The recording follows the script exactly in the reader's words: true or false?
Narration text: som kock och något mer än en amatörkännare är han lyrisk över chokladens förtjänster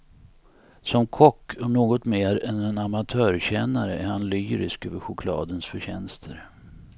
true